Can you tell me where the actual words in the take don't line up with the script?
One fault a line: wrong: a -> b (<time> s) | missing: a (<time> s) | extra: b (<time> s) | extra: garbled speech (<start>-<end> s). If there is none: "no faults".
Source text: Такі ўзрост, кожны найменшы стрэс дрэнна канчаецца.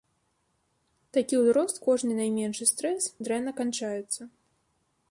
no faults